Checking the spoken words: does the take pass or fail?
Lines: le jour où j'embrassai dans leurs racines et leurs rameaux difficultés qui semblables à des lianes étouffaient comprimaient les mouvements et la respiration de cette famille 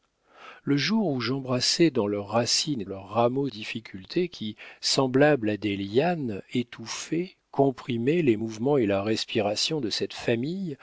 pass